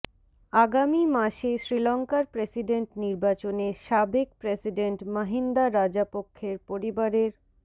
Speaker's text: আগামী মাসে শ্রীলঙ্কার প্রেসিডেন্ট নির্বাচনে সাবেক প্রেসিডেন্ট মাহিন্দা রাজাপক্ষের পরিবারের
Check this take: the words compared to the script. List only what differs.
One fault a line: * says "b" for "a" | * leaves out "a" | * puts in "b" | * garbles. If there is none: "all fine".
all fine